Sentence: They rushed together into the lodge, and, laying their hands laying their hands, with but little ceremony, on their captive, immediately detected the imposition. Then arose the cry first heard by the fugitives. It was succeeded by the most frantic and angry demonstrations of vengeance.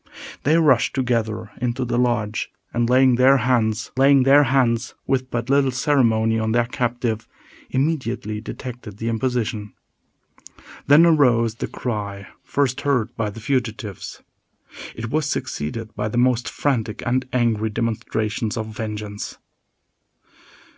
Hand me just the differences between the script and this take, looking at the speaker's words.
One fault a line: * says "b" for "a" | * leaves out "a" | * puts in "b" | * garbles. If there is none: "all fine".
all fine